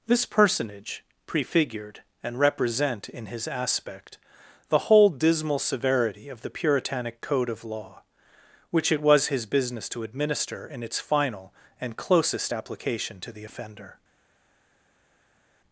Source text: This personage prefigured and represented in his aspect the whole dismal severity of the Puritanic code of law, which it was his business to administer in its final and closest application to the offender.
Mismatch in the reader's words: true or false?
true